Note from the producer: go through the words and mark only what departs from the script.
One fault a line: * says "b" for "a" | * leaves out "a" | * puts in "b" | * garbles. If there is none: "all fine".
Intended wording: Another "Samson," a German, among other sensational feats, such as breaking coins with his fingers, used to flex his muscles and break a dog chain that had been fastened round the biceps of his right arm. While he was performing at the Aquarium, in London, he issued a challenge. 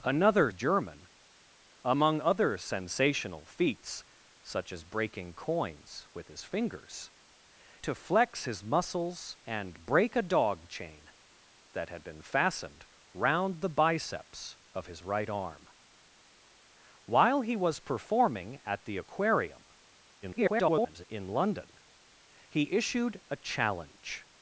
* leaves out "Samson a"
* leaves out "used"
* garbles